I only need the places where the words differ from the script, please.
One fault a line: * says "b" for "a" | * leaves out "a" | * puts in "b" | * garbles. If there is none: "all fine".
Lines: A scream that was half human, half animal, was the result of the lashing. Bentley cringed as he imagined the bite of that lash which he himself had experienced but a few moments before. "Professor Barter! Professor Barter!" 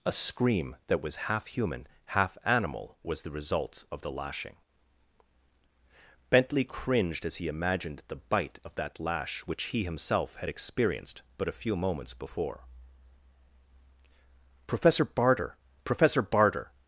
all fine